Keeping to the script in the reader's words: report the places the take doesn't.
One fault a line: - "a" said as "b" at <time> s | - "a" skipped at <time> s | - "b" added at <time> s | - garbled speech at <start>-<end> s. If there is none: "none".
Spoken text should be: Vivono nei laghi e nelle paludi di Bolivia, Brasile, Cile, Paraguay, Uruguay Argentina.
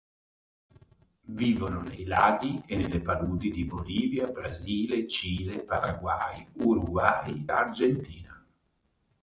none